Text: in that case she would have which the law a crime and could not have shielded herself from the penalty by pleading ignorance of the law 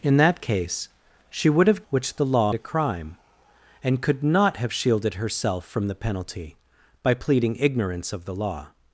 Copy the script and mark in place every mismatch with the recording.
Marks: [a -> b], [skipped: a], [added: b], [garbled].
in that case she would have which the law a crime and could not have shielded herself from the penalty by pleading ignorance of the law